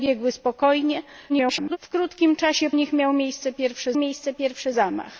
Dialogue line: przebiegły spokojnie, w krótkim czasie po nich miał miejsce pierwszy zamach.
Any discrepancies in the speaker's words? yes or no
yes